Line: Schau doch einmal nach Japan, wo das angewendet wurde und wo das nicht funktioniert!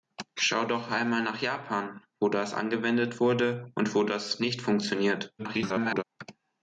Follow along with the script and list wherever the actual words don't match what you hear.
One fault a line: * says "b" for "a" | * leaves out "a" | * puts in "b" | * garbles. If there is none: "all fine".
* garbles